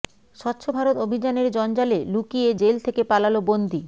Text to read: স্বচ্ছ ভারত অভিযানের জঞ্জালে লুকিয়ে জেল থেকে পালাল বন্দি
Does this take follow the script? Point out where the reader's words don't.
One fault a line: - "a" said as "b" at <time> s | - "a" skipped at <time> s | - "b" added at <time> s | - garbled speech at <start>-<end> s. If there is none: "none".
none